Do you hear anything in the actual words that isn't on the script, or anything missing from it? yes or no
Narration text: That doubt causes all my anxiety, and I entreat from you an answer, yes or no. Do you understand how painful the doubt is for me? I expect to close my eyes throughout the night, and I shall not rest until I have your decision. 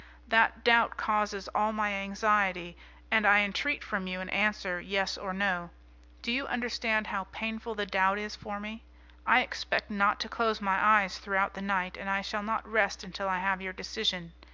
yes